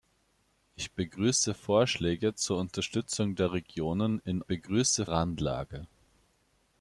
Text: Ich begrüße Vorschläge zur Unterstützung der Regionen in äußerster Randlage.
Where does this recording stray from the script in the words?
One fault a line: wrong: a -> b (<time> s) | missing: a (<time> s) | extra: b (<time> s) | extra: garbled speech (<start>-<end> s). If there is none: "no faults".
wrong: äußerster -> begrüße (4.4 s)